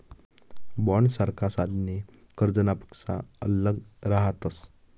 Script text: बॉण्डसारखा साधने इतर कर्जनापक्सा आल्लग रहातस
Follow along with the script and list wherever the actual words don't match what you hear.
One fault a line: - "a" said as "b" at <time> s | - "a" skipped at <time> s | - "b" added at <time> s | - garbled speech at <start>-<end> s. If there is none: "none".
- "इतर" skipped at 2.0 s